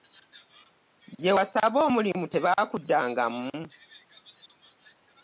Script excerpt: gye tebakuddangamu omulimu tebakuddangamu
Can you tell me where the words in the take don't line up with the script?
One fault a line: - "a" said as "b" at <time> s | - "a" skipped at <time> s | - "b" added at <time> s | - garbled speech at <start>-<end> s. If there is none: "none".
- "tebakuddangamu" said as "wasaba" at 1.4 s